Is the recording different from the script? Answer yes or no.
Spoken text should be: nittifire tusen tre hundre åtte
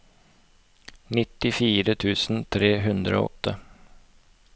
no